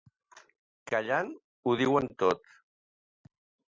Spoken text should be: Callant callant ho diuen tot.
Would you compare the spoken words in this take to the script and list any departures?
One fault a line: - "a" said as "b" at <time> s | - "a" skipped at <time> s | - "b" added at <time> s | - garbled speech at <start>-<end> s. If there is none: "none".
- "callant" skipped at 1.3 s